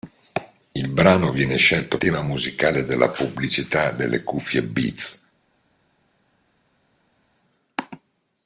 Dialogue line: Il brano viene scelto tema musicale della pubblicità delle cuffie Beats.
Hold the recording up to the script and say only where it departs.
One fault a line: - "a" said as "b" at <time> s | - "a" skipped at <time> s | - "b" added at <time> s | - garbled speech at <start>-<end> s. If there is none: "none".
none